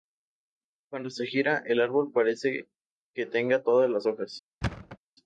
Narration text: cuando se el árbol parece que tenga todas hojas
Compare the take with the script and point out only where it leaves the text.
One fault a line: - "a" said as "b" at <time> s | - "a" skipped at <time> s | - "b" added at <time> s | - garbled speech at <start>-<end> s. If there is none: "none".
- "gira" added at 1.2 s
- "las" added at 3.9 s